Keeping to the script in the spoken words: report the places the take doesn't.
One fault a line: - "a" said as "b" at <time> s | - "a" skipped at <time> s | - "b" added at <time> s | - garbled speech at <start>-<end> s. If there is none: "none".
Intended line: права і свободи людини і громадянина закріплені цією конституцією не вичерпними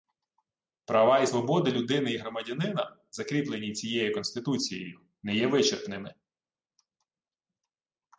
- "є" added at 5.4 s